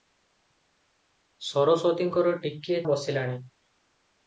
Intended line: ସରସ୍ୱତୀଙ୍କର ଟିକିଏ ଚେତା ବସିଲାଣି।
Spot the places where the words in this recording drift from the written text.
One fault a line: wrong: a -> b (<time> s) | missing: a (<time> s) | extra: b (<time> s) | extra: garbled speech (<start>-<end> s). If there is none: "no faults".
missing: ଚେତା (2.8 s)